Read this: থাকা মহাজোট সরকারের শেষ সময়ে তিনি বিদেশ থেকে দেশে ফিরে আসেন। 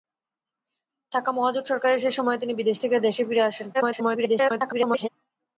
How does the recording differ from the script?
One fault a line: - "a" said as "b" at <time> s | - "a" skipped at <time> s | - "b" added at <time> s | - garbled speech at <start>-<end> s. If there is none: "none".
- garbled speech at 3.7-5.1 s